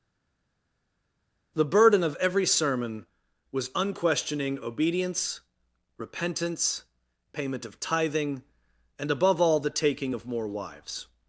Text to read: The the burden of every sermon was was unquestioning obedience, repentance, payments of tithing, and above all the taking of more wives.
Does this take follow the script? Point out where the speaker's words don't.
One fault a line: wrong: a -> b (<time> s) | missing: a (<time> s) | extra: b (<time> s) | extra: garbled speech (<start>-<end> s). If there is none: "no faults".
missing: the (1.6 s)
missing: was (3.7 s)
wrong: payments -> payment (7.3 s)